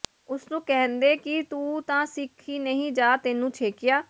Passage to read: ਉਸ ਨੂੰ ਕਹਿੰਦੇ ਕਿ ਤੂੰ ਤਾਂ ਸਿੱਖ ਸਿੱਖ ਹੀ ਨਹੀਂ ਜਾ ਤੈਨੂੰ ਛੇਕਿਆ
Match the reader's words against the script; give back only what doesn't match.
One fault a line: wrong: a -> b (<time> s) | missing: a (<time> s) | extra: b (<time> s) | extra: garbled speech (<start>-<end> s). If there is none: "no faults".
missing: ਸਿੱਖ (2.5 s)